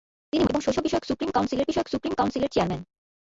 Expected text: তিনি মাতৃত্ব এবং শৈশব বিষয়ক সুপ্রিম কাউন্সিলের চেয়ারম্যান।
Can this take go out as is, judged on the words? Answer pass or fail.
fail